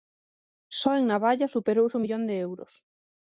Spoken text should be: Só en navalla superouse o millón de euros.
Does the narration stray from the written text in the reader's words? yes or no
no